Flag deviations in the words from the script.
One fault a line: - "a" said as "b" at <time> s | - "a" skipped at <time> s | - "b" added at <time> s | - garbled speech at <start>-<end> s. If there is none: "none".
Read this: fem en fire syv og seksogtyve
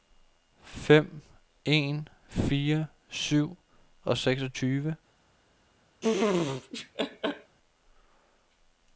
none